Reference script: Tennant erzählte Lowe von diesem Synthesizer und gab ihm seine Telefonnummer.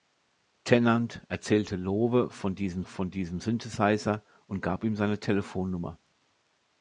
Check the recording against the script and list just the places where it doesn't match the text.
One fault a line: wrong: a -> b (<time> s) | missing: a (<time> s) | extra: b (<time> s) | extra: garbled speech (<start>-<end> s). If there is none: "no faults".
extra: von diesem (2.9 s)